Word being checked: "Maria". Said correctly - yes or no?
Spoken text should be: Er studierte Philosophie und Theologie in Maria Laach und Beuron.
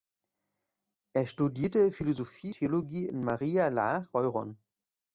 yes